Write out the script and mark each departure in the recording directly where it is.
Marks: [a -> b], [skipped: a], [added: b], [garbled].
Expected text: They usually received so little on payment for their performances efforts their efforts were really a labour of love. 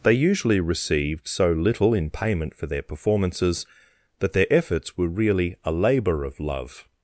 They usually received so little [on -> in] payment for their performances [efforts -> that] their efforts were really a labour of love.